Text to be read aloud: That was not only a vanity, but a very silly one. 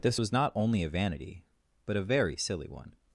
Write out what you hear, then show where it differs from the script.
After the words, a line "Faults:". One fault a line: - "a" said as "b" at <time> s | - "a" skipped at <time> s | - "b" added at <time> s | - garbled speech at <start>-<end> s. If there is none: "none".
This was not only a vanity, but a very silly one.
Faults:
- "That" said as "This" at 0.0 s